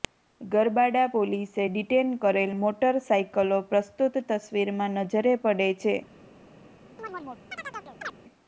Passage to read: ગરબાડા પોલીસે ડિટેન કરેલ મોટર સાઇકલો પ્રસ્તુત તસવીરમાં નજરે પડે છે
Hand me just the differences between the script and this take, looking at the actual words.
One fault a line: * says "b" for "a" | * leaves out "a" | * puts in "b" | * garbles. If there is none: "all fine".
all fine